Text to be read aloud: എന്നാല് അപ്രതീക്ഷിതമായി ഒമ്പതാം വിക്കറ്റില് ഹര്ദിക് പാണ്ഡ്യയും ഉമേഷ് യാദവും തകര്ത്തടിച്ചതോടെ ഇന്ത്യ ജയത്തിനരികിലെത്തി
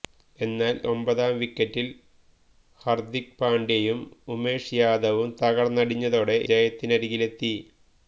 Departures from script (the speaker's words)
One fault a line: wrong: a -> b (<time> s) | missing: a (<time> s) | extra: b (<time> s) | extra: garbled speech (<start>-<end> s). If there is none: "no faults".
missing: അപ്രതീക്ഷിതമായി (0.8 s)
missing: ഇന്ത്യ (6.4 s)